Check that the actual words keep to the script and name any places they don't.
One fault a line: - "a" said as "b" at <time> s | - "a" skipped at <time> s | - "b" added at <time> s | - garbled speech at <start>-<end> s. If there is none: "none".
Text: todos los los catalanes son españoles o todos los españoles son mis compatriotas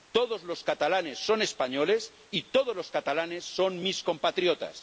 - "los" skipped at 0.6 s
- "o" said as "y" at 2.3 s
- "españoles" said as "catalanes" at 2.9 s